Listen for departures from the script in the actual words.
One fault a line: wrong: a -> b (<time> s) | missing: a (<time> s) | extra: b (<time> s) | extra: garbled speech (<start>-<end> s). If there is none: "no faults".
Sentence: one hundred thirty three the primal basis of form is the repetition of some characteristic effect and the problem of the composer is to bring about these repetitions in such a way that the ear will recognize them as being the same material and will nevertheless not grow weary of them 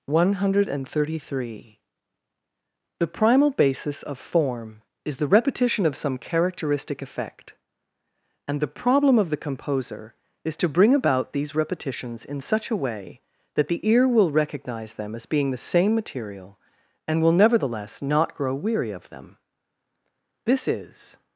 extra: this is (20.4 s)